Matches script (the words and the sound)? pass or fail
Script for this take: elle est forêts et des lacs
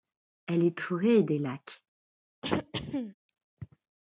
fail